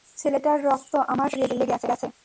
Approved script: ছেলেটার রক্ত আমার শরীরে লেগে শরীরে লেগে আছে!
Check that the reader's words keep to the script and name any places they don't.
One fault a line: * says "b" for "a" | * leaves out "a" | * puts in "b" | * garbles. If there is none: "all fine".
* leaves out "শরীরে লেগে"